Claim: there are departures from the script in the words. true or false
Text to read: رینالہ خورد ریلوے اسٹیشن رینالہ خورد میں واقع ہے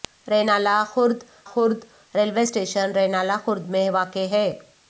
true